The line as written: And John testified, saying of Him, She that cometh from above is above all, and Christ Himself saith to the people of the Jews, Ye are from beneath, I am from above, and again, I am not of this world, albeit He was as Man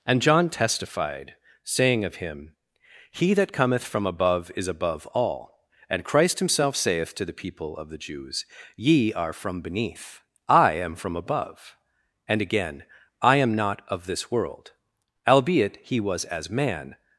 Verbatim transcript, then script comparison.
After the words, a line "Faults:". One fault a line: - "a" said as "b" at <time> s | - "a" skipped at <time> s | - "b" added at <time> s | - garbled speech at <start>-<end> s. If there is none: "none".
And John testified, saying of Him, He that cometh from above is above all, and Christ Himself saith to the people of the Jews, Ye are from beneath, I am from above, and again, I am not of this world, albeit He was as Man
Faults:
- "She" said as "He" at 3.1 s